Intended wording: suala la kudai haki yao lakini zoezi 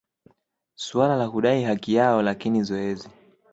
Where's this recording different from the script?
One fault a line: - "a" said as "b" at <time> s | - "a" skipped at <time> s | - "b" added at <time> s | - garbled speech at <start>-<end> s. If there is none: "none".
none